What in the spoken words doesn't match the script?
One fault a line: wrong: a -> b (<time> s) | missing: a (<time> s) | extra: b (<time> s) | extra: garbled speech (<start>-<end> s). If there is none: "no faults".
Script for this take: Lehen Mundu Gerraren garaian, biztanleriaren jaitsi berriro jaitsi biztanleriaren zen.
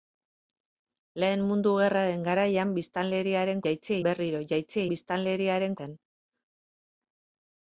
no faults